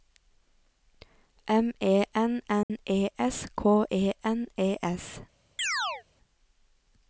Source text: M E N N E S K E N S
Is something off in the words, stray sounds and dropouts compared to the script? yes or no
yes